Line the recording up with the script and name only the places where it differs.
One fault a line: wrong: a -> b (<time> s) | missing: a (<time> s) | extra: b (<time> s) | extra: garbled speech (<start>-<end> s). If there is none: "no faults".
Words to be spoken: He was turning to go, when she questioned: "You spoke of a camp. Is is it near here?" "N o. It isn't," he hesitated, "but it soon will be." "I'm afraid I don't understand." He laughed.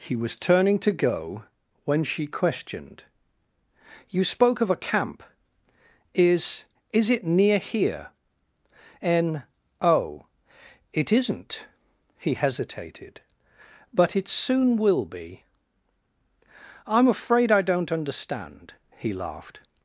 no faults